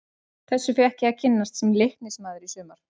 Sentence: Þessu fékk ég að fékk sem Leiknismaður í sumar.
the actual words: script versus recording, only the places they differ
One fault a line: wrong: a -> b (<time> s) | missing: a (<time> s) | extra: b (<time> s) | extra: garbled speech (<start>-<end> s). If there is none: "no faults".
wrong: fékk -> kynnast (1.2 s)